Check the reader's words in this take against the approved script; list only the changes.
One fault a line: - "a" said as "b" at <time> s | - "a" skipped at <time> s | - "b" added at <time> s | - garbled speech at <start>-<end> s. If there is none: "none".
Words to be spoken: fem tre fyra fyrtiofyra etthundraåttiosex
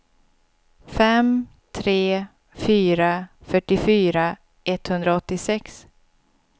none